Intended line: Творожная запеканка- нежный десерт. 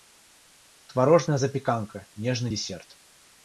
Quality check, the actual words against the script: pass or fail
pass